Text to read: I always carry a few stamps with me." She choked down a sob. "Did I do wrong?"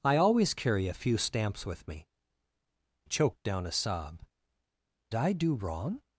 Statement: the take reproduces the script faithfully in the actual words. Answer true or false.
false